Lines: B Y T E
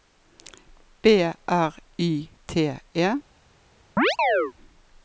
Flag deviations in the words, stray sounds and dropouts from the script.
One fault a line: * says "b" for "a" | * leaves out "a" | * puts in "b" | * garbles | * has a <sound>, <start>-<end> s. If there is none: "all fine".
* puts in "R"
* has a chirp, 4.0-4.5 s